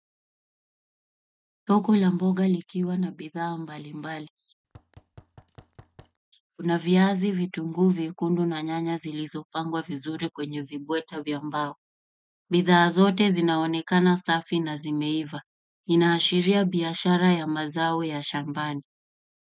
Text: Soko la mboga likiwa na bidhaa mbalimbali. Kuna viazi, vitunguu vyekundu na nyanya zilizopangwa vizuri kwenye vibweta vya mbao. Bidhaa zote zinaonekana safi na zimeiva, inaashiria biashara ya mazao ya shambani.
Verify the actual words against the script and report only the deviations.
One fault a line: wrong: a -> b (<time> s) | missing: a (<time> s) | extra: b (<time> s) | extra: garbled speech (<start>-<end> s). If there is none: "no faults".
no faults